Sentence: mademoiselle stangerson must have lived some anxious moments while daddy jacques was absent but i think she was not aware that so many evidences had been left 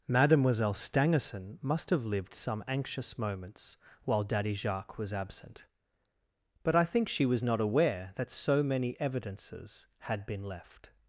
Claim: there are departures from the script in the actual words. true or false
false